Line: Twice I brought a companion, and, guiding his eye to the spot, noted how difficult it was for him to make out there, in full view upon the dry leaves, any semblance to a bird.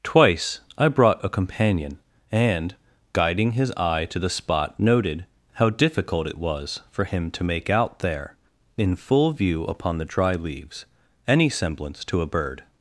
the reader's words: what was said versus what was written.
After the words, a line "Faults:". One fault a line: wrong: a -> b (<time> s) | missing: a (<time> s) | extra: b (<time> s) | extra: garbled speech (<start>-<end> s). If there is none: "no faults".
Twice I brought a companion, and, guiding his eye to the spot, noted how difficult it was for him to make out there, in full view upon the dry leaves, any semblance to a bird.
Faults:
no faults